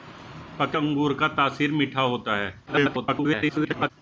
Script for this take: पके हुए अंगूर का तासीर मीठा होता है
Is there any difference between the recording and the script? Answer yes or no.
yes